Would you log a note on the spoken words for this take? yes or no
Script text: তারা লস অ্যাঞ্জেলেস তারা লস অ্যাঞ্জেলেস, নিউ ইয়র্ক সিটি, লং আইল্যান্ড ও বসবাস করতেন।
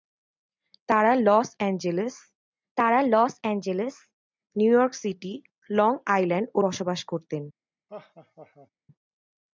no